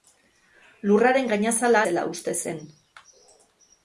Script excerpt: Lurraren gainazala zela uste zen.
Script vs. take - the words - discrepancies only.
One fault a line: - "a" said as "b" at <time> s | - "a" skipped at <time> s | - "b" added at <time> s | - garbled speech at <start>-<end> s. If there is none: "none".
none